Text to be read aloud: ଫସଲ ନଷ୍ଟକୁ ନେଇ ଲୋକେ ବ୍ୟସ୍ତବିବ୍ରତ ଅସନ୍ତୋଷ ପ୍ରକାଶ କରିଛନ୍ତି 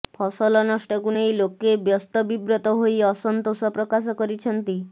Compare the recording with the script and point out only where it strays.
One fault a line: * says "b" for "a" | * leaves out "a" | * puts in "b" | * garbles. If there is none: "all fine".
* puts in "ହୋଇ"